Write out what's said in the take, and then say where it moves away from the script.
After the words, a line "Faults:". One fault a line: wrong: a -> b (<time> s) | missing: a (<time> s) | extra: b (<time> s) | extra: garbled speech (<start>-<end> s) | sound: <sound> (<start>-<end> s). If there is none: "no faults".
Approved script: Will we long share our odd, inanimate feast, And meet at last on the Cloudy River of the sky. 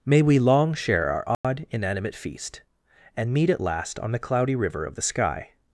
May we long share our odd, inanimate feast, And meet at last on the Cloudy River of the sky.
Faults:
wrong: Will -> May (0.0 s)
sound: dropout (1.3-1.4 s)